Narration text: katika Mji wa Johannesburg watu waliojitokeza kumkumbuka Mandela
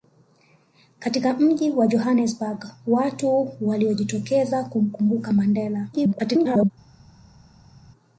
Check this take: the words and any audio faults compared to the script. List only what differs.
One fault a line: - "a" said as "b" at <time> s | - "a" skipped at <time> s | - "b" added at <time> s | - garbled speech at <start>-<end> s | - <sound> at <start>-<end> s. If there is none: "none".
- garbled speech at 5.9-6.7 s